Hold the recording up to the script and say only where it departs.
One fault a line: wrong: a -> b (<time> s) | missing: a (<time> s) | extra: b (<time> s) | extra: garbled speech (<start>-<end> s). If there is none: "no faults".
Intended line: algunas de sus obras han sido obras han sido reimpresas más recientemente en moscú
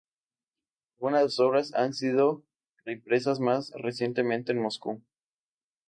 missing: obras han sido (2.4 s)